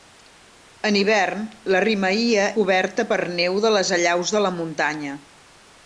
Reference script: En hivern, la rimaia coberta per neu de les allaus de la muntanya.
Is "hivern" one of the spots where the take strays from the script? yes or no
no